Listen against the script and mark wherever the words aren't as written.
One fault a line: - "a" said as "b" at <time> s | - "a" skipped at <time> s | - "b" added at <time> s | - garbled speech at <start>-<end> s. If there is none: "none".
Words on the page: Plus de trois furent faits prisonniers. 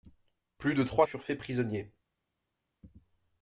none